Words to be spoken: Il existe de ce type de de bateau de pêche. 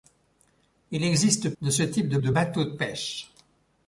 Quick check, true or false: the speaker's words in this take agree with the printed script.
true